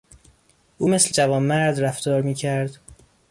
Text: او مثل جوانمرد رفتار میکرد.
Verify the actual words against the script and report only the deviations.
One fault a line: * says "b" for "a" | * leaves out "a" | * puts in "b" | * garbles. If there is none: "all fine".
all fine